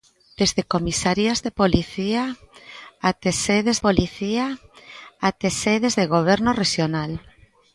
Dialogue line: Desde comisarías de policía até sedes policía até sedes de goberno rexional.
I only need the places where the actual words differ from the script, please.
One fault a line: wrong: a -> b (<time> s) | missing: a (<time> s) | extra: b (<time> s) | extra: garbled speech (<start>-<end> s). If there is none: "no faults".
no faults